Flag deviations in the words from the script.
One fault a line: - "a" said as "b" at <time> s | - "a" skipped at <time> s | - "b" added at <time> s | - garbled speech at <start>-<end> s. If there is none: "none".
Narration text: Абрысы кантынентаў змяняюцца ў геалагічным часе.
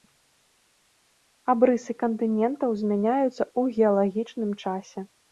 none